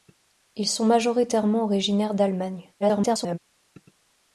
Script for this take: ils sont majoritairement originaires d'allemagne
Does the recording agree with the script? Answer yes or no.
no